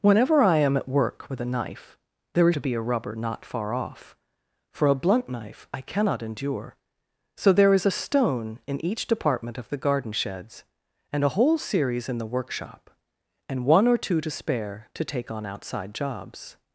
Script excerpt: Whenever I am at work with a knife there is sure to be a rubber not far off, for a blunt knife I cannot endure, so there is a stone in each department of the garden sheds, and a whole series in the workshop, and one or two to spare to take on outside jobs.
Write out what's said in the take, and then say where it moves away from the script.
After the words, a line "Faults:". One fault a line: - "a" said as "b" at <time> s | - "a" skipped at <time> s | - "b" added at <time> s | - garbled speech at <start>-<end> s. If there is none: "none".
Whenever I am at work with a knife there is to be a rubber not far off, for a blunt knife I cannot endure, so there is a stone in each department of the garden sheds, and a whole series in the workshop, and one or two to spare to take on outside jobs.
Faults:
- "sure" skipped at 2.5 s